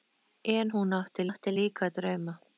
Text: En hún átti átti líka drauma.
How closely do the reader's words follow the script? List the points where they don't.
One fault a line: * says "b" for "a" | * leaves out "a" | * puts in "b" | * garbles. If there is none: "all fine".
all fine